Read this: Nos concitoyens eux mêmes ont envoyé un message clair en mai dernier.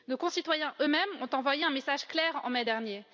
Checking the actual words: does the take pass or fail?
pass